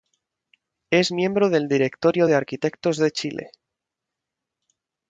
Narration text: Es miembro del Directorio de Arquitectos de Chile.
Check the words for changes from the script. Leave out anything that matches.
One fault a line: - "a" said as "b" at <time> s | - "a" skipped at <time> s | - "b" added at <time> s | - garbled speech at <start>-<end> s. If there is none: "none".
none